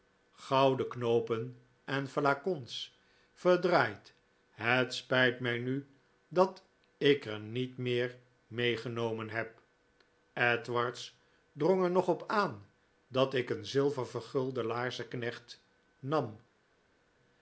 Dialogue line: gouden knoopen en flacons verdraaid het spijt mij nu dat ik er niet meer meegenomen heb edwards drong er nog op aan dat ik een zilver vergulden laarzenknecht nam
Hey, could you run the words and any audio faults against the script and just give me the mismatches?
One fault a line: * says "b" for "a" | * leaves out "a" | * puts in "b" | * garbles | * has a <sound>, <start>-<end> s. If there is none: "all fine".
all fine